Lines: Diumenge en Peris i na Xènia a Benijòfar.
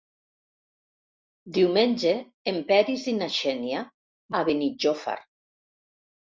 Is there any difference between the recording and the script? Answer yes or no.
no